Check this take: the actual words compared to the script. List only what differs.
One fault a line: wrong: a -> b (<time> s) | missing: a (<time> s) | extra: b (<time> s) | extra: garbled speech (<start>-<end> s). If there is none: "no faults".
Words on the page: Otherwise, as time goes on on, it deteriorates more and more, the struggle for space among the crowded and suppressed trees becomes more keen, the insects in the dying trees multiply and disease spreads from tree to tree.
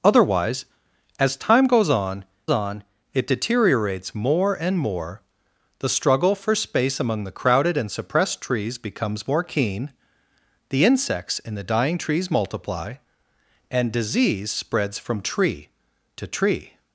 no faults